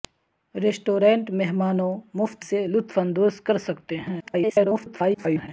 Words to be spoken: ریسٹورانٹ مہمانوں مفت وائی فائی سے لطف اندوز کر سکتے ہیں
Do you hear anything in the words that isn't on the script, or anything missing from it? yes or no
yes